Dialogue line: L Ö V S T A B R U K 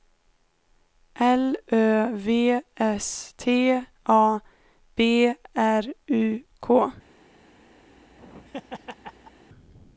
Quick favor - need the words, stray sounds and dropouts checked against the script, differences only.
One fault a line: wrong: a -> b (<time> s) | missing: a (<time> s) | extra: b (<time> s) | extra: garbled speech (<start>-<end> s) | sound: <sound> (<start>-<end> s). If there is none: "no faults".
sound: laugh (7.9-9.5 s)